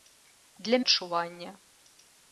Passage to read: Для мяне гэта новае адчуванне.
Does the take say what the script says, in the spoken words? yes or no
no